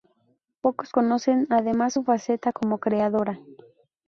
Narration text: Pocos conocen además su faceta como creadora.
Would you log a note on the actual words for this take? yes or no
no